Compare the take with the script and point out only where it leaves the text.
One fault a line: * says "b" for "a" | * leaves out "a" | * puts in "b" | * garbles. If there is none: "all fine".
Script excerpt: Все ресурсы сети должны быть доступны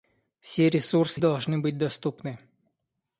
* leaves out "сети"